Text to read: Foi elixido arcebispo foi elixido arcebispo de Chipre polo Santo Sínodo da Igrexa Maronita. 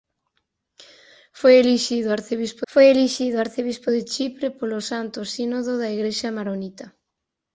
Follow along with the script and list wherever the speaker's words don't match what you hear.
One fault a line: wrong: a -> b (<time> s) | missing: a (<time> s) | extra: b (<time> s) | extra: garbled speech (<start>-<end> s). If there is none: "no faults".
no faults